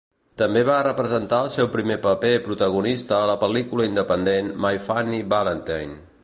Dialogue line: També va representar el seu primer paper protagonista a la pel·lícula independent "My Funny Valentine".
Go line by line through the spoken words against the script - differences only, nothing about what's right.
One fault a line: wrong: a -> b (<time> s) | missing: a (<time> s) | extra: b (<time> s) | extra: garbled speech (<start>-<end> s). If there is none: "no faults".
no faults